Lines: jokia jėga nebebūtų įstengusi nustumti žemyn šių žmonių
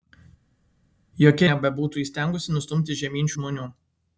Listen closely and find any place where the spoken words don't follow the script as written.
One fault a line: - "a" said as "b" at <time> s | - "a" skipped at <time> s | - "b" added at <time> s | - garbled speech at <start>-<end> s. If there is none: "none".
- "jėga" skipped at 1.5 s
- "šių" skipped at 3.3 s